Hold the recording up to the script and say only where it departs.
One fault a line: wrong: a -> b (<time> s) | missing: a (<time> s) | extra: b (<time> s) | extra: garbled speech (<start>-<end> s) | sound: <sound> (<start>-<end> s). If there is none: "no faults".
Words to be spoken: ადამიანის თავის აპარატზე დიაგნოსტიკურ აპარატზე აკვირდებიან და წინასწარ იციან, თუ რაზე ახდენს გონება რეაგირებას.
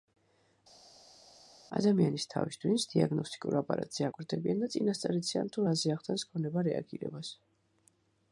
wrong: აპარატზე -> ტვინს (2.6 s)